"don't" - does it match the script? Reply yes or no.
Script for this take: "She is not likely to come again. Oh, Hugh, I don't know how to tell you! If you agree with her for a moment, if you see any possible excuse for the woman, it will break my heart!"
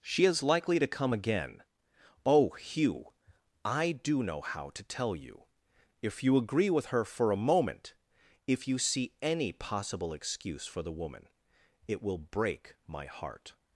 no